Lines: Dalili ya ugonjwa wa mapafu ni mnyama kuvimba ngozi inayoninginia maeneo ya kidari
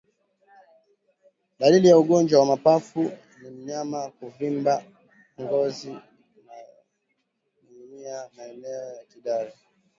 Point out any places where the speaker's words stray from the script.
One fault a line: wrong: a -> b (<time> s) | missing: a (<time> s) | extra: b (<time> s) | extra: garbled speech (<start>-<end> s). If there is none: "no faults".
no faults